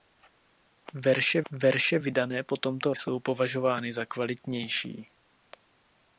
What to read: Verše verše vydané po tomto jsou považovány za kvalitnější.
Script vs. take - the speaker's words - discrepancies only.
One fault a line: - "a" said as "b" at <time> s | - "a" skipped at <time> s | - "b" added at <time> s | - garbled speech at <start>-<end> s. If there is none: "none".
none